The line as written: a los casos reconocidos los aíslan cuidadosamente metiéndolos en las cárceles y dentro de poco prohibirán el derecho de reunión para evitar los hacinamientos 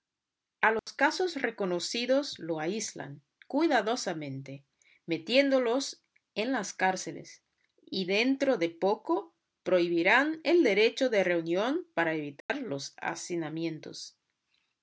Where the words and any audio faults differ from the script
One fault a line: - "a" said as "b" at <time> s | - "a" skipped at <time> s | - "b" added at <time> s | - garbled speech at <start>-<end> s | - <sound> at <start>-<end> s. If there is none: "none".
- dropout at 0.8-0.9 s
- dropout at 12.4-12.5 s